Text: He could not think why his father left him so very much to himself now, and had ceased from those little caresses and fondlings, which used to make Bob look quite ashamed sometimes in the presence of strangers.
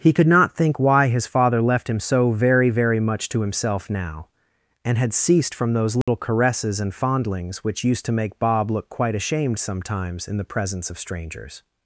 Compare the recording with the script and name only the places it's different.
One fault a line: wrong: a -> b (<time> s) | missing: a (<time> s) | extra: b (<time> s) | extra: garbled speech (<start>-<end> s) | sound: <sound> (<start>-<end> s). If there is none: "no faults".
extra: very (2.7 s)
sound: dropout (6.0-6.1 s)